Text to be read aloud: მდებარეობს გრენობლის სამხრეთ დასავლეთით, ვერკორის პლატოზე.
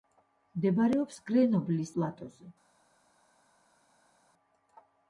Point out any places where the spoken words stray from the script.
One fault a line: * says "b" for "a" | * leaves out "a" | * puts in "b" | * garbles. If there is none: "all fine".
* leaves out "სამხრეთ დასავლეთით ვერკორის"